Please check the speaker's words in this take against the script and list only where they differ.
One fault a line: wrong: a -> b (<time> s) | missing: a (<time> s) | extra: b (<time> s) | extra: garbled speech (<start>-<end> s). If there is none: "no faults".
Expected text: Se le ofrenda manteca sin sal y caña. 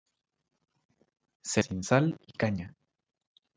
missing: le ofrenda manteca (1.6 s)